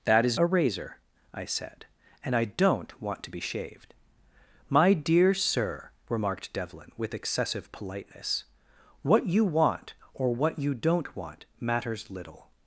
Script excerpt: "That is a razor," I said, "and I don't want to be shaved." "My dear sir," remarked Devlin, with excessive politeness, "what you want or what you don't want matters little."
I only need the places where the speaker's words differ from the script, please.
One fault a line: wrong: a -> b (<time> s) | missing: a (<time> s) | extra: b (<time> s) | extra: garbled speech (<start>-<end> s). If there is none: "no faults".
no faults